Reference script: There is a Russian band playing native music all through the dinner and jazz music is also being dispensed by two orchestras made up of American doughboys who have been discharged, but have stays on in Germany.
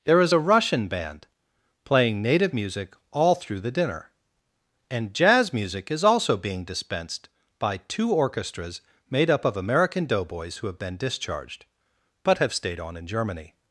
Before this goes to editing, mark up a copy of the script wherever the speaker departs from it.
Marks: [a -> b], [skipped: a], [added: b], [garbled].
There is a Russian band playing native music all through the dinner and jazz music is also being dispensed by two orchestras made up of American doughboys who have been discharged, but have [stays -> stayed] on in Germany.